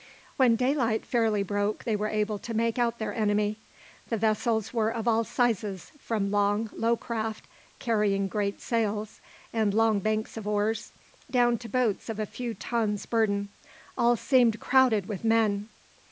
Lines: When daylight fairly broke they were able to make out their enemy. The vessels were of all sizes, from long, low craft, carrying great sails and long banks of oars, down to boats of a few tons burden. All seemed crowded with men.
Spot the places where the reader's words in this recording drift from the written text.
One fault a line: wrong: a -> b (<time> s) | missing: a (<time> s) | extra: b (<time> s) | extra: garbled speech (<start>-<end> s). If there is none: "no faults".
no faults